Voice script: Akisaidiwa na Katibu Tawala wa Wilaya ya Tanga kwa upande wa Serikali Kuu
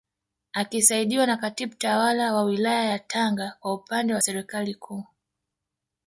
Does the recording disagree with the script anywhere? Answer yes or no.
no